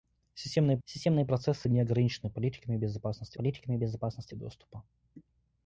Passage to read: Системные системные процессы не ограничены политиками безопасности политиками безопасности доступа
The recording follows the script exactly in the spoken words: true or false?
true